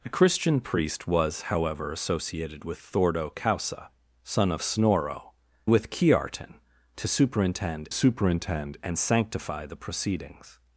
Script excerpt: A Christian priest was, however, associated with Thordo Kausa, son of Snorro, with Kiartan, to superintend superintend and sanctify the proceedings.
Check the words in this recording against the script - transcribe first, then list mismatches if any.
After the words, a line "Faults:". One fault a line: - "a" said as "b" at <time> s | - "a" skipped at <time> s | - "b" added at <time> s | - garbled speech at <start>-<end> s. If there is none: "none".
A Christian priest was, however, associated with Thordo Kausa, son of Snorro, with Kiartan, to superintend superintend and sanctify the proceedings.
Faults:
none